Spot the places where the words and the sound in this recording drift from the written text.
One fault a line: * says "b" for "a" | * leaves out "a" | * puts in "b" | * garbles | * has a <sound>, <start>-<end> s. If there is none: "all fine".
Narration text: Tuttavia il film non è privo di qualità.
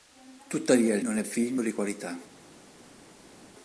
* leaves out "film"
* says "film" for "privo"